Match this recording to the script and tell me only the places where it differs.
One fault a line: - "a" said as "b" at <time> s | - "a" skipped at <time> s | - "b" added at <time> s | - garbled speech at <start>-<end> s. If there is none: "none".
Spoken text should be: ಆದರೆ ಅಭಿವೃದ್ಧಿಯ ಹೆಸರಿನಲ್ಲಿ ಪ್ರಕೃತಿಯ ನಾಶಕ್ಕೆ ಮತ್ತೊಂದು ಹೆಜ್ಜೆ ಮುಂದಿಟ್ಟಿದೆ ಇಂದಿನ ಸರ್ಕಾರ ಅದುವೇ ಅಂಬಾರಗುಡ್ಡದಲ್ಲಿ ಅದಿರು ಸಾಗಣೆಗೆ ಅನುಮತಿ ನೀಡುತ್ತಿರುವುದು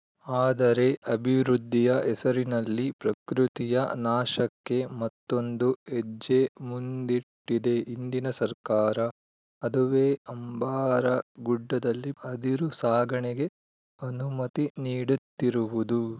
none